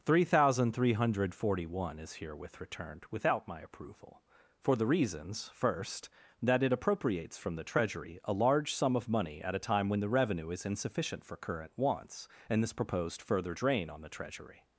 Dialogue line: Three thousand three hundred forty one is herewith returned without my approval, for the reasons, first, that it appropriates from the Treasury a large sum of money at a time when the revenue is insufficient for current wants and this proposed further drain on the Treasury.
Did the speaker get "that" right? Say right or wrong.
right